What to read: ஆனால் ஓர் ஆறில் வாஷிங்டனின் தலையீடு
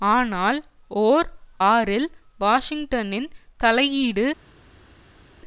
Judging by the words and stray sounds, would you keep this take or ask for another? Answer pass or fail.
pass